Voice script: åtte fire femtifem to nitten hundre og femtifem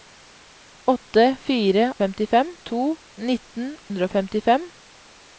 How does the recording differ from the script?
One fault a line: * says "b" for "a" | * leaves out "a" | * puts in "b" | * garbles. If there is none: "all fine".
all fine